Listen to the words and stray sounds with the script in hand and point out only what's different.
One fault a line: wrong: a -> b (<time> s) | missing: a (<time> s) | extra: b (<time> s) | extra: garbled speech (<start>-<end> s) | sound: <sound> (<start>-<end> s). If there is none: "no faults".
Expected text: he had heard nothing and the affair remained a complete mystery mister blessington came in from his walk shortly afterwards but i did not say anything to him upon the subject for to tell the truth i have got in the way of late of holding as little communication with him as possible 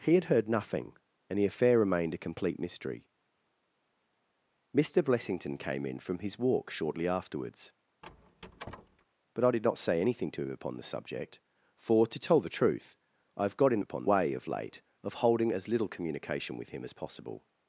sound: squeak (8.0-9.1 s)
wrong: the -> upon (13.8 s)